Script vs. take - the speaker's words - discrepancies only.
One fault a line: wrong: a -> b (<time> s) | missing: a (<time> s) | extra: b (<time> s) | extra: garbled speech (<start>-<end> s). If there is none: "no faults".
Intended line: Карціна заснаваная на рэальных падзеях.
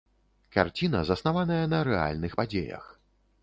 no faults